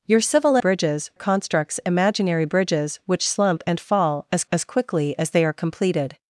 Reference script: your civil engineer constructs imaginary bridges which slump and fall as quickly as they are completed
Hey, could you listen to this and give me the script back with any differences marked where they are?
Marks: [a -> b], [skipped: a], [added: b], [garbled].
your civil [engineer -> bridges] constructs imaginary bridges which slump and fall as [added: as] quickly as they are completed